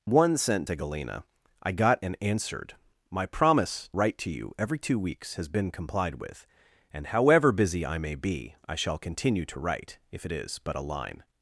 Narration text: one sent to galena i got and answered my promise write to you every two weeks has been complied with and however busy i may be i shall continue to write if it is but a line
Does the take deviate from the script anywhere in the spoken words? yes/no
no